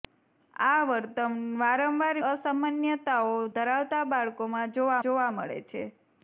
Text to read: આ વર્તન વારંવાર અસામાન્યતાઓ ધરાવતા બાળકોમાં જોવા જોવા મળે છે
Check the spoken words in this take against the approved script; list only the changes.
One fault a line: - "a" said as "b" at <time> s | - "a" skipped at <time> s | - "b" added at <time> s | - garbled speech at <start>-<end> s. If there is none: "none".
none